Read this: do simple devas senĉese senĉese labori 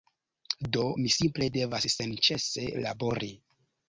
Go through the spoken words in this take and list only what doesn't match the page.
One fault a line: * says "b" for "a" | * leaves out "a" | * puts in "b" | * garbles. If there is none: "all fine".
* puts in "mi"
* leaves out "senĉese"